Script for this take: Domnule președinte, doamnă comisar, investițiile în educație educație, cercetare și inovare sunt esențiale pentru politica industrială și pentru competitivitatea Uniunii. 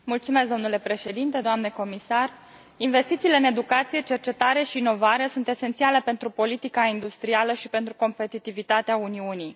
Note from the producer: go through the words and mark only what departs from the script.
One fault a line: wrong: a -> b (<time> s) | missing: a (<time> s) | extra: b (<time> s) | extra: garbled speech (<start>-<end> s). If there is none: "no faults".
missing: educație (4.0 s)